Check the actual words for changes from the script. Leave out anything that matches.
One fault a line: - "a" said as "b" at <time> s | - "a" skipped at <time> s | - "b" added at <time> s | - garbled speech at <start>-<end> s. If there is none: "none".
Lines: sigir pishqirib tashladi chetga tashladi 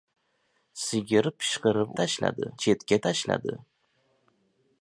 none